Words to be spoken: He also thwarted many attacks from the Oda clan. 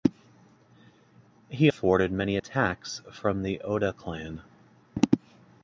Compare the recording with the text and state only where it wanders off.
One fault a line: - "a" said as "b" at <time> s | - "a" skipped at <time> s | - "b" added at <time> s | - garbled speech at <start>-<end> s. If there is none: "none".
- "also" skipped at 1.7 s